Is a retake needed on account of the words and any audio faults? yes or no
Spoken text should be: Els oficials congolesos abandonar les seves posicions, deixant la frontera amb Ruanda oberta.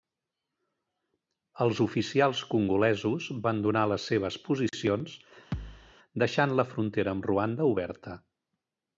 yes